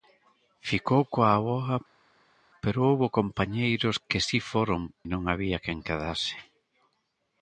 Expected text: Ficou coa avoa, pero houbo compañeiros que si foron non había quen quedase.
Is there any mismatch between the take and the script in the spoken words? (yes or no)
no